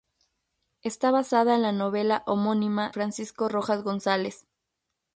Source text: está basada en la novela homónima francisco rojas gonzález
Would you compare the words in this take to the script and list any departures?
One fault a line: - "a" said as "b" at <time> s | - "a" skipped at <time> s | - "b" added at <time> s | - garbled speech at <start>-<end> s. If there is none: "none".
none